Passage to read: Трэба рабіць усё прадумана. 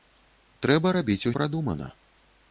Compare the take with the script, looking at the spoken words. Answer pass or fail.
fail